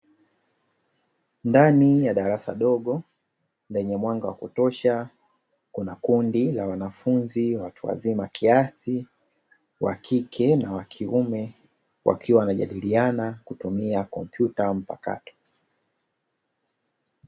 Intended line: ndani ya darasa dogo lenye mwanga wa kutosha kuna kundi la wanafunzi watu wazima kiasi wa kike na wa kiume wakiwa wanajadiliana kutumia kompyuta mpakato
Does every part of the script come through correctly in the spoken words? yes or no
yes